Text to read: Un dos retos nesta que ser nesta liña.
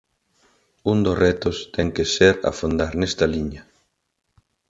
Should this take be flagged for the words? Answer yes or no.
yes